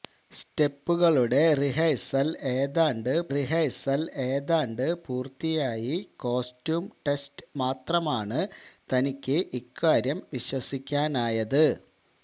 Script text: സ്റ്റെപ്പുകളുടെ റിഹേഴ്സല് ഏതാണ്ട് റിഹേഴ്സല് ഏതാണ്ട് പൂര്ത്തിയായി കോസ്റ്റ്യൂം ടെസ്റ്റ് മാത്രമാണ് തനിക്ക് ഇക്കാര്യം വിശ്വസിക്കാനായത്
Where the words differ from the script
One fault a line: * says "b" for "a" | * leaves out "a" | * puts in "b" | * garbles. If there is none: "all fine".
all fine